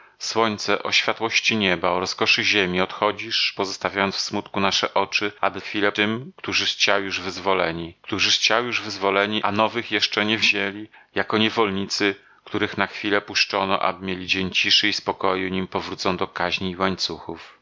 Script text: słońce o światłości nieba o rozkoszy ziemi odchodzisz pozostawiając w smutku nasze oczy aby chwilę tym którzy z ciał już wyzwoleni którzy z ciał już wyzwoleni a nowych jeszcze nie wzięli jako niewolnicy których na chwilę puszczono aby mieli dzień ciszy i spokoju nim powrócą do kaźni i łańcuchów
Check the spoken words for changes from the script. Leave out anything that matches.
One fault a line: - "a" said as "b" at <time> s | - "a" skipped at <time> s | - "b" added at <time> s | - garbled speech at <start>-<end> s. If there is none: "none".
none